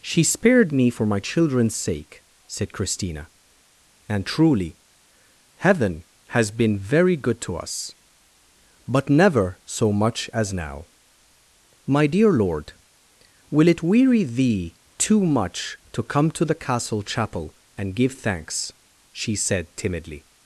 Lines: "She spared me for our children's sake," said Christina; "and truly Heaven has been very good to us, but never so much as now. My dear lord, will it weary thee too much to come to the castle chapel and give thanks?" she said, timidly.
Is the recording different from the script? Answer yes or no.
yes